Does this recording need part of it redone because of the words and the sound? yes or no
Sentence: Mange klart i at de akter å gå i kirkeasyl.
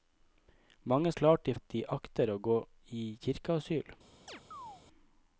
yes